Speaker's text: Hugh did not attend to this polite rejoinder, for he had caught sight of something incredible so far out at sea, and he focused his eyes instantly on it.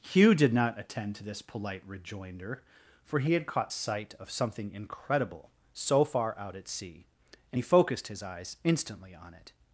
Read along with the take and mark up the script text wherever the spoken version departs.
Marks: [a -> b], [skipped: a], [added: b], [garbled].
Hugh did not attend to this polite rejoinder, for he had caught sight of something incredible so far out at sea, and he focused his eyes instantly on it.